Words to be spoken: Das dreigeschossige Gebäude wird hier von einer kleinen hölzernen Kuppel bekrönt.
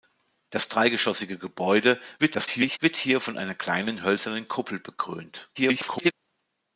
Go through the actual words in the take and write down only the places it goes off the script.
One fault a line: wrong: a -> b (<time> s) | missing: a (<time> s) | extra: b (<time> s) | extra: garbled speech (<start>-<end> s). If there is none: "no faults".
extra: garbled speech (2.2-2.8 s)
extra: garbled speech (5.5-6.1 s)